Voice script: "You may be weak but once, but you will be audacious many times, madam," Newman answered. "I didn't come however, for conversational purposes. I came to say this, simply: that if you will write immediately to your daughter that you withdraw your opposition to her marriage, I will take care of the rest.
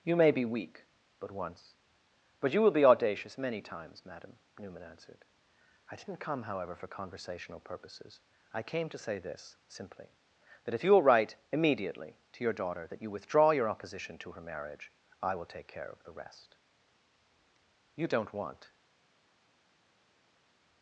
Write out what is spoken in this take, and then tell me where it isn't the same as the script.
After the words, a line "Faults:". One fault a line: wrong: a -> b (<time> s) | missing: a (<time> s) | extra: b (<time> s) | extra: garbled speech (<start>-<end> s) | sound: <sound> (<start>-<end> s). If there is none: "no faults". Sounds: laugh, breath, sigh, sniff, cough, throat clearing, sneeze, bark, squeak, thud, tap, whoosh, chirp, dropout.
"You may be weak but once, but you will be audacious many times, madam," Newman answered. "I didn't come however, for conversational purposes. I came to say this, simply: that if you will write immediately to your daughter that you withdraw your opposition to her marriage, I will take care of the rest. You don't want
Faults:
extra: You don't want (17.9 s)